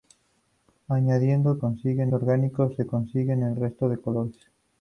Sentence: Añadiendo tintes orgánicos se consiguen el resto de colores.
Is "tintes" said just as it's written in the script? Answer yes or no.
no